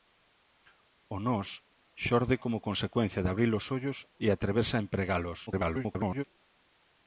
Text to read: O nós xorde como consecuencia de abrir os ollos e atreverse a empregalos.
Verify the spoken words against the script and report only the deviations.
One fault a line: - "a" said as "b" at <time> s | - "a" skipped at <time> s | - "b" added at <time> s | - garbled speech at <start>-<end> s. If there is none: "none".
- garbled speech at 5.5-6.2 s